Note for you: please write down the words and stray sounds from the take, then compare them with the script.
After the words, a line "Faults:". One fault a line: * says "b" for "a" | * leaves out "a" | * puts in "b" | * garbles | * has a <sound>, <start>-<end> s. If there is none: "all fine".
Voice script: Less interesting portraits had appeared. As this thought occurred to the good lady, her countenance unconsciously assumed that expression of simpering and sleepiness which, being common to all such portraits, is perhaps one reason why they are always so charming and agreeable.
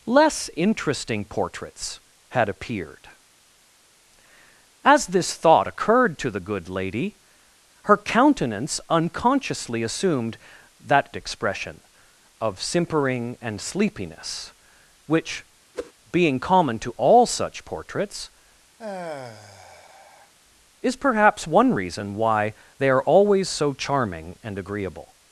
Less interesting portraits had appeared. As this thought occurred to the good lady, her countenance unconsciously assumed that expression of simpering and sleepiness which, being common to all such portraits, is perhaps one reason why they are always so charming and agreeable.
Faults:
* has a whoosh, 15.7-15.9 s
* has a sigh, 18.8-20.3 s